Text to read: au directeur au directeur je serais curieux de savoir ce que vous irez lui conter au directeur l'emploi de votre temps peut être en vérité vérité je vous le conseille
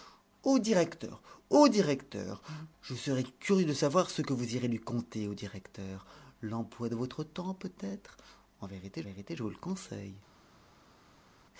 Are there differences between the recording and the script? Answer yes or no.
no